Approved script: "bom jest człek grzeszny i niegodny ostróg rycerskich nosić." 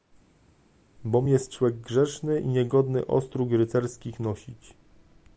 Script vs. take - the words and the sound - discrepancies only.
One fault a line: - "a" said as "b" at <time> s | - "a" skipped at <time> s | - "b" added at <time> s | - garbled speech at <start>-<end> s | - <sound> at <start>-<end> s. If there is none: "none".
none